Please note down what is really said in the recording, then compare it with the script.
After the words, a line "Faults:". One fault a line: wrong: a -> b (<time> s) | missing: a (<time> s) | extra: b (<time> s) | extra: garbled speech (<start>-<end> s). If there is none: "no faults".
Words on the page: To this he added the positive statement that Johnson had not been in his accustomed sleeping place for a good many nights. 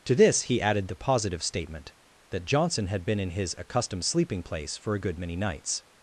To this he added the positive statement that Johnson had been in his accustomed sleeping place for a good many nights.
Faults:
missing: not (3.0 s)